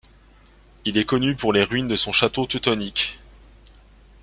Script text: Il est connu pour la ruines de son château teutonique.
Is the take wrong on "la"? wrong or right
wrong